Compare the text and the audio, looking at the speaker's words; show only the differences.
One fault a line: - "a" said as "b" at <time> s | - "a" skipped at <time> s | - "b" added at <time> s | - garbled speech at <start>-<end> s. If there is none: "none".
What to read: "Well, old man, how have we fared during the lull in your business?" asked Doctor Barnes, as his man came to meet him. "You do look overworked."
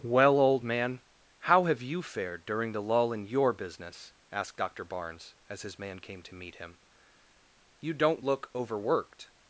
- "we" said as "you" at 1.8 s
- "do" said as "don't" at 7.9 s